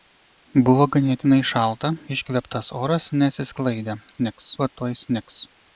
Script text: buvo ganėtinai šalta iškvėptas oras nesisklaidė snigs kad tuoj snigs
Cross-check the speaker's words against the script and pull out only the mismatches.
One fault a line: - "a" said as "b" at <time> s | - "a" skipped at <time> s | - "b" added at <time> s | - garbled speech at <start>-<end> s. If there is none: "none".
none